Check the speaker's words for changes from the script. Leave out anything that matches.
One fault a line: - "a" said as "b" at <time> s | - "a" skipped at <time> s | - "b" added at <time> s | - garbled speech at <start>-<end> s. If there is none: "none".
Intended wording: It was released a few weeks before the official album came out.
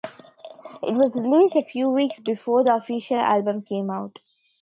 none